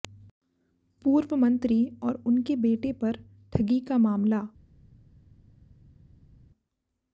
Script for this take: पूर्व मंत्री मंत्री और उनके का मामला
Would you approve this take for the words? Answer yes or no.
no